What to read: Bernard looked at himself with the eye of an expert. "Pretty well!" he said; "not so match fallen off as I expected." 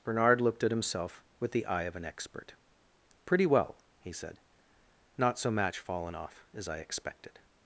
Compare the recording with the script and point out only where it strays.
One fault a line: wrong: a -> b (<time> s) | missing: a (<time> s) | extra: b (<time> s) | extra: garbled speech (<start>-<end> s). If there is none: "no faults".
no faults